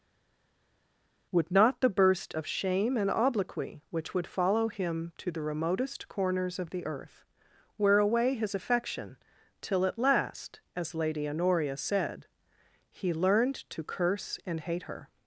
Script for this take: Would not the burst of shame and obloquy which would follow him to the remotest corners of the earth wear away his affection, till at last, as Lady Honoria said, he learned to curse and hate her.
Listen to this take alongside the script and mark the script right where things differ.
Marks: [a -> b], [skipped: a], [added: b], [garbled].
Would not the burst of shame and obloquy which would follow him to the remotest corners of the earth wear away his affection, till at last, as Lady Honoria said, he learned to curse and hate her.